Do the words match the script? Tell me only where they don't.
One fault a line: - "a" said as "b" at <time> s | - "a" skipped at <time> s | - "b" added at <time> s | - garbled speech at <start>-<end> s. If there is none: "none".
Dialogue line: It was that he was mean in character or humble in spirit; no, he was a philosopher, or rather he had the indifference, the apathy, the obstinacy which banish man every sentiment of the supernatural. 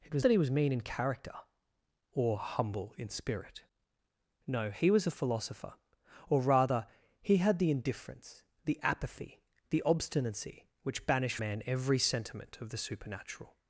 none